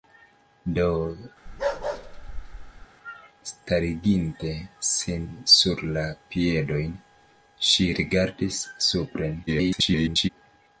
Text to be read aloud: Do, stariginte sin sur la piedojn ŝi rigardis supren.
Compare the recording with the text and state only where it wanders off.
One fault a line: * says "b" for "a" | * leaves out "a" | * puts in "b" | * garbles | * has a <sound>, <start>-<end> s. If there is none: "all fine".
* has a bark, 1.5-2.9 s
* garbles